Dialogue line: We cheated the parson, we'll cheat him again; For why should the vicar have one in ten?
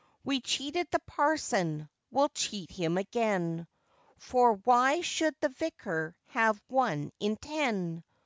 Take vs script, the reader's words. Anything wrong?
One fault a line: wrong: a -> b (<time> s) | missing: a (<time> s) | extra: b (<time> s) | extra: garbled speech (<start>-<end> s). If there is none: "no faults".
no faults